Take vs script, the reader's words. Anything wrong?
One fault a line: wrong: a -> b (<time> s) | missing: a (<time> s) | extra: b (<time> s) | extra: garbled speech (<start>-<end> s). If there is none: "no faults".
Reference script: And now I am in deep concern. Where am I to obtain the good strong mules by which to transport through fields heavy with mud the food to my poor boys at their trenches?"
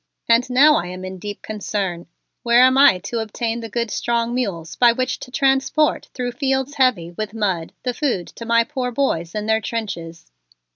wrong: at -> in (9.3 s)